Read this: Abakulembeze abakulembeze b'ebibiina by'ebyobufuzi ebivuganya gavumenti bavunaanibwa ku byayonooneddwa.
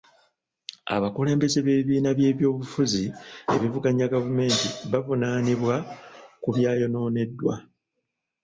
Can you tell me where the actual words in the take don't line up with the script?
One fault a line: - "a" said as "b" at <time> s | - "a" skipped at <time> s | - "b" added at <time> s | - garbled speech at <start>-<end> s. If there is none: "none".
- "abakulembeze" skipped at 1.6 s